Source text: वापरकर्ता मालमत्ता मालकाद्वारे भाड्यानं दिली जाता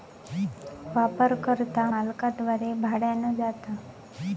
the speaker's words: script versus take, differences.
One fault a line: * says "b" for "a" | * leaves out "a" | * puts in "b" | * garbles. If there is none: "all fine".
* leaves out "मालमत्ता"
* leaves out "दिली"